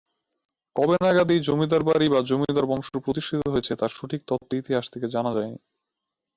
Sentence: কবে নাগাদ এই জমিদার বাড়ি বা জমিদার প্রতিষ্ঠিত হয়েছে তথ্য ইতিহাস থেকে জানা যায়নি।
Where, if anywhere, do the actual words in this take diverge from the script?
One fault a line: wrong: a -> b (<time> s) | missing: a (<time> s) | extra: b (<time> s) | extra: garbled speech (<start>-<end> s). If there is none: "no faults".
extra: বংশ (2.7 s)
extra: তার সঠিক (3.8 s)